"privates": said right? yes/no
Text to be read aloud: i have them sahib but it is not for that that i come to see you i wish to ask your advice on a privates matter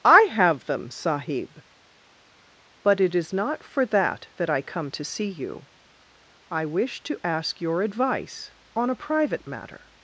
no